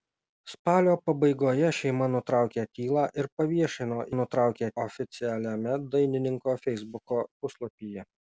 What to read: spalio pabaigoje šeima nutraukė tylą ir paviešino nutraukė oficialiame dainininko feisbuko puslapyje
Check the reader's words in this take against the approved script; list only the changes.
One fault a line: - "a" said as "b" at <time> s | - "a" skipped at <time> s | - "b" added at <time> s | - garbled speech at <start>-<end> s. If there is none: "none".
none